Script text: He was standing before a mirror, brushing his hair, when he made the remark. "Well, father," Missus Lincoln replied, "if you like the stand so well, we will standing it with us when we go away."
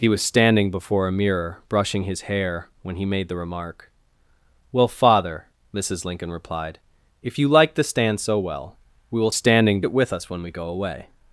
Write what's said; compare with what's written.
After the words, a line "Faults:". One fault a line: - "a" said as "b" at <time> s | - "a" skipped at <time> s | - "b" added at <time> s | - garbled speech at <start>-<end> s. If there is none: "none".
He was standing before a mirror, brushing his hair, when he made the remark. "Well, father," Missus Lincoln replied, "if you like the stand so well, we will standing it with us when we go away."
Faults:
none